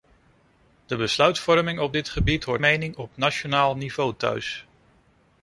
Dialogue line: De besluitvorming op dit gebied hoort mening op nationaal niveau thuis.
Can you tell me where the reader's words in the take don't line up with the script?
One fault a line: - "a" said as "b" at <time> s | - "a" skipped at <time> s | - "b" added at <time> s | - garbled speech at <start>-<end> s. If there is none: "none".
none